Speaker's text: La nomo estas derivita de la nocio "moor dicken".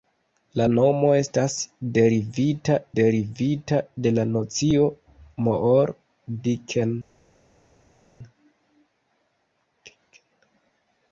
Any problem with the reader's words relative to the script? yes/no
yes